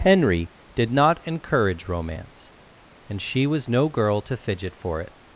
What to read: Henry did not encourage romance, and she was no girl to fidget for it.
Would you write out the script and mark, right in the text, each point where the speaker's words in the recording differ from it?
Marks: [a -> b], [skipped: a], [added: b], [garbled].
Henry did not encourage romance, and she was no girl to fidget for it.